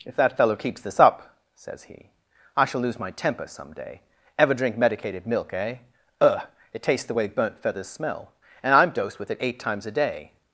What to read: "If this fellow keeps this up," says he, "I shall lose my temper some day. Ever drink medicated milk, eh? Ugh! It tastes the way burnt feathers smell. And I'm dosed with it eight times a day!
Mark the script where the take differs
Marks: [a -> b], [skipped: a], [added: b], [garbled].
"If [this -> that] fellow keeps this up," says he, "I shall lose my temper some day. Ever drink medicated milk, eh? Ugh! It tastes the way burnt feathers smell. And I'm dosed with it eight times a day!